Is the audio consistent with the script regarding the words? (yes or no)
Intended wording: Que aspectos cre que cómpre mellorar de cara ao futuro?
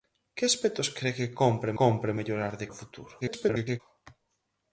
no